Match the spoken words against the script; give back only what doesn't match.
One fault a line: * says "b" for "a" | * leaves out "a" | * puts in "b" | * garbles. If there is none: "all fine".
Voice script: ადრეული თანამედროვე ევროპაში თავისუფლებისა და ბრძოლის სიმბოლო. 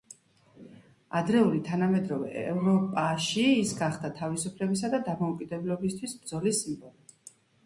* puts in "ის გახდა"
* puts in "დამოუკიდებლობისთვის"